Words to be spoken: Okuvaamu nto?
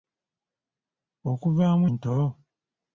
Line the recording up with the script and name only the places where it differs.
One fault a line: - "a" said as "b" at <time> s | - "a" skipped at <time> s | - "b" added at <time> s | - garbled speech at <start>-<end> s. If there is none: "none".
none